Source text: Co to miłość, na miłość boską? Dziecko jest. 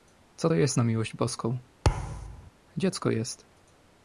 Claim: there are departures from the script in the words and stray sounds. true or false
true